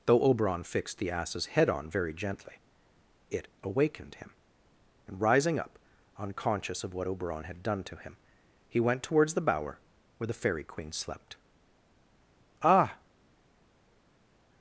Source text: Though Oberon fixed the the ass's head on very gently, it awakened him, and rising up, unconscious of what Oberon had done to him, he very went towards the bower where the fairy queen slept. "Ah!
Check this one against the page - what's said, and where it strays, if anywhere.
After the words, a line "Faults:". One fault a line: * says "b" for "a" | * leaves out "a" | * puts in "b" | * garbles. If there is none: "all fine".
Though Oberon fixed the ass's head on very gently, it awakened him, and rising up, unconscious of what Oberon had done to him, he went towards the bower where the fairy queen slept. "Ah!
Faults:
* leaves out "the"
* leaves out "very"